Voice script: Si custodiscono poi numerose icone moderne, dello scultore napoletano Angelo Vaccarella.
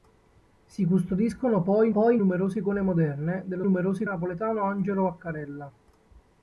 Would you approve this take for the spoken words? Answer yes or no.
no